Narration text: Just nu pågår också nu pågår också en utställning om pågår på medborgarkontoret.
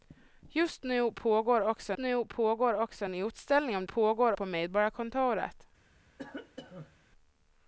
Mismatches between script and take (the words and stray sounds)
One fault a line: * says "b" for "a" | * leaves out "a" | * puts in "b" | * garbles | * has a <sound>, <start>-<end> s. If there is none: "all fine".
* has a cough, 6.2-7.0 s